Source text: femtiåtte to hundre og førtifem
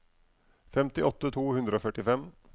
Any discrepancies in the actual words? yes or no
no